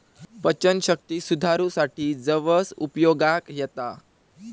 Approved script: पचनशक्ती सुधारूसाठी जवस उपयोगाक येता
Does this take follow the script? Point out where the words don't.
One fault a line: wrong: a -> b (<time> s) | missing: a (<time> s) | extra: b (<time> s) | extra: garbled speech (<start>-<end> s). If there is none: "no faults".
no faults